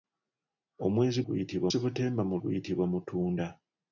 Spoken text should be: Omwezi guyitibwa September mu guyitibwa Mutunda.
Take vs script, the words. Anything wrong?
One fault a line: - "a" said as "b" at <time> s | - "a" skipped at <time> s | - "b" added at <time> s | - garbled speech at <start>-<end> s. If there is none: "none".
none